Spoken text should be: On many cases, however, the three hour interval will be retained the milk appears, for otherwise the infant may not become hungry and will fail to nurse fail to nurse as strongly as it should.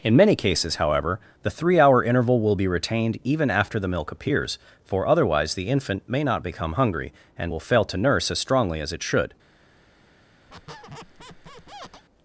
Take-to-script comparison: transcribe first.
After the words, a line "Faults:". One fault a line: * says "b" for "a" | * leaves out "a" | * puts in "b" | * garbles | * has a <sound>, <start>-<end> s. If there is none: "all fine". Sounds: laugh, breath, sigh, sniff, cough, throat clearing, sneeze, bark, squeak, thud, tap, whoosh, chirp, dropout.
In many cases, however, the three hour interval will be retained even after the milk appears, for otherwise the infant may not become hungry and will fail to nurse as strongly as it should.
Faults:
* says "In" for "On"
* puts in "even after"
* leaves out "fail to nurse"
* has a squeak, 10.5-12.0 s